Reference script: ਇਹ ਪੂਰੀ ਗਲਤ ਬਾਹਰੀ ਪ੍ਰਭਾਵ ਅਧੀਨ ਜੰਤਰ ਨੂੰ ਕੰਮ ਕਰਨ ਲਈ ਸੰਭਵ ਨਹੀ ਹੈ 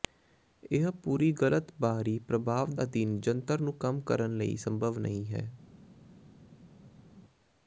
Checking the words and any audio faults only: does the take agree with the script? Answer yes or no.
yes